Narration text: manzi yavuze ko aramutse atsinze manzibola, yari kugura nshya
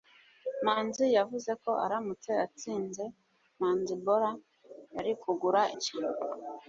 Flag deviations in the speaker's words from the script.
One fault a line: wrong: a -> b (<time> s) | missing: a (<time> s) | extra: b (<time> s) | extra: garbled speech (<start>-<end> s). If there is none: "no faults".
no faults